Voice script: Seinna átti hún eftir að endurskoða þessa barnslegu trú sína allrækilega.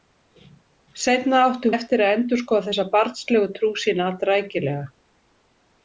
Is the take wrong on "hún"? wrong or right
wrong